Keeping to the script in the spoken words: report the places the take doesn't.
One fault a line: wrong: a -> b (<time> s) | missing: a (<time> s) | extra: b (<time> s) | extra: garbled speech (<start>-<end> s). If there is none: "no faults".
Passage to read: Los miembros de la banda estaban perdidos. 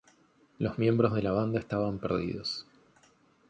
no faults